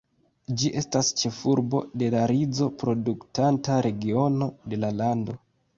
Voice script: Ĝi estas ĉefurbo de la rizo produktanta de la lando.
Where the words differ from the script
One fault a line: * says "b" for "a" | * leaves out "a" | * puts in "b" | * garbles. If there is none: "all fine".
* puts in "regiono"